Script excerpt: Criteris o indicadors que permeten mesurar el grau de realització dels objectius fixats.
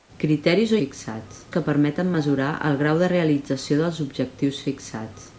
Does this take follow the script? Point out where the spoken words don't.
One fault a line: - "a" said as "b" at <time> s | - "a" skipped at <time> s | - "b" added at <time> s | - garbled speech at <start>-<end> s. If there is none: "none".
- "indicadors" said as "fixats" at 0.8 s